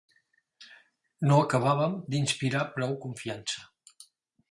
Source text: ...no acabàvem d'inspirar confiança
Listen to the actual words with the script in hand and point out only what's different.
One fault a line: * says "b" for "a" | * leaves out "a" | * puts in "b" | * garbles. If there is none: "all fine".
* puts in "prou"